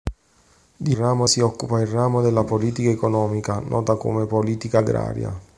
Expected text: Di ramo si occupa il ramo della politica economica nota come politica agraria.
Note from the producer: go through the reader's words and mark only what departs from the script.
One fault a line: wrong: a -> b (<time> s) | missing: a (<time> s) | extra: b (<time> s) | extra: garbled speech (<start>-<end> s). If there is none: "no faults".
no faults